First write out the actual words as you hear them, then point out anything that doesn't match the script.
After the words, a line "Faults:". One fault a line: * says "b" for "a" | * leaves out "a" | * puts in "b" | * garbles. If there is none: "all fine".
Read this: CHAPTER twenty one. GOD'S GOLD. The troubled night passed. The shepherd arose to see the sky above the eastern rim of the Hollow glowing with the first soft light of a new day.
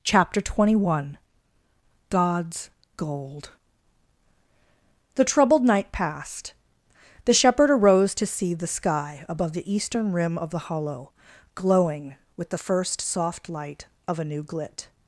CHAPTER twenty one. GOD'S GOLD. The troubled night passed. The shepherd arose to see the sky above the eastern rim of the Hollow glowing with the first soft light of a new glit.
Faults:
* says "glit" for "day"